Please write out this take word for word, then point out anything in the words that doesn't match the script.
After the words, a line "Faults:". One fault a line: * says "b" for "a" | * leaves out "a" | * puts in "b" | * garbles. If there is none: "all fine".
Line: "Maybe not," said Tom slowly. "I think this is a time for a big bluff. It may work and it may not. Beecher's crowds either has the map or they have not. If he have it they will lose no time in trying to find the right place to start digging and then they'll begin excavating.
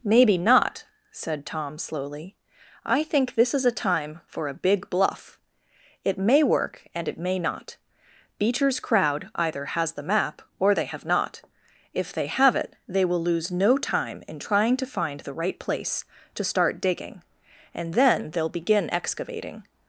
"Maybe not," said Tom slowly. "I think this is a time for a big bluff. It may work and it may not. Beecher's crowd either has the map or they have not. If they have it they will lose no time in trying to find the right place to start digging and then they'll begin excavating.
Faults:
* says "crowd" for "crowds"
* says "they" for "he"